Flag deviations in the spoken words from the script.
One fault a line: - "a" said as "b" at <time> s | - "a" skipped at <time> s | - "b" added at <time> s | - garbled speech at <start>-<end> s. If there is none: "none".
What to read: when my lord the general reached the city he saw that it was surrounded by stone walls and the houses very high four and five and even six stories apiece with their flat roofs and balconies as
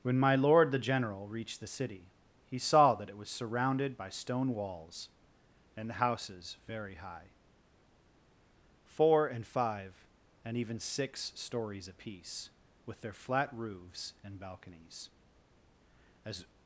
none